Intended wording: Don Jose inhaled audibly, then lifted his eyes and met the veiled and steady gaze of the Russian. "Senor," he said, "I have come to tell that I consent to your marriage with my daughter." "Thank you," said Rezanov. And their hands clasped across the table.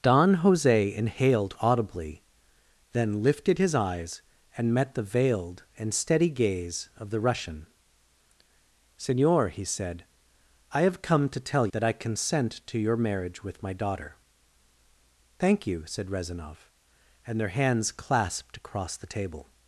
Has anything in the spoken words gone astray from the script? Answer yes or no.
no